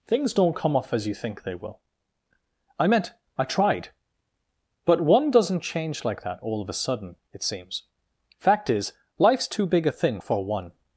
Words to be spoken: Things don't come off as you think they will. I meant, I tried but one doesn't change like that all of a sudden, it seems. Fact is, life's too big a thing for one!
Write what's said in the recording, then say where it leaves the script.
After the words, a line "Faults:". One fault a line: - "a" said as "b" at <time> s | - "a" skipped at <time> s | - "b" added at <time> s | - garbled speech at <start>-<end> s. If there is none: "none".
Things don't come off as you think they will. I meant, I tried but one doesn't change like that all of a sudden, it seems. Fact is, life's too big a thing for one!
Faults:
none